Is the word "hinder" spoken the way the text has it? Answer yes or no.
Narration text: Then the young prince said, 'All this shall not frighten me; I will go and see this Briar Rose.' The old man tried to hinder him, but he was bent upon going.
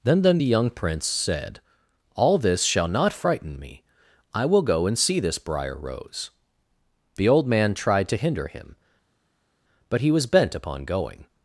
yes